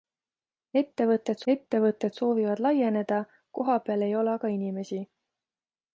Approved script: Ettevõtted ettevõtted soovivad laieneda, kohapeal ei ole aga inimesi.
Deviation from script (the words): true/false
false